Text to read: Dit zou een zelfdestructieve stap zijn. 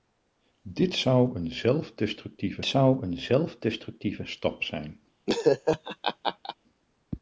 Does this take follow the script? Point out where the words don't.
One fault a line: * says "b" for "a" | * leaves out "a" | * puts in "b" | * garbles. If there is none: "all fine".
* puts in "zou een zelfdestructieve"